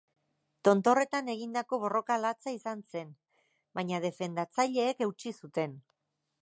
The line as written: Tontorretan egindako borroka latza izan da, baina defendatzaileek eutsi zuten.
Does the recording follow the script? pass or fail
fail